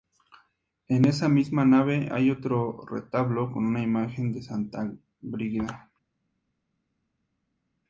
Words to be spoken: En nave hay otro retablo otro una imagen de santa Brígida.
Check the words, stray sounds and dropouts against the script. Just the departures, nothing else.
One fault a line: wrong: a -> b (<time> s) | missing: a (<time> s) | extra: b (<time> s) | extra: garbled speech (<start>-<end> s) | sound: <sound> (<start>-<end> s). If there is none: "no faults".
extra: esa misma (1.1 s)
wrong: otro -> con (3.5 s)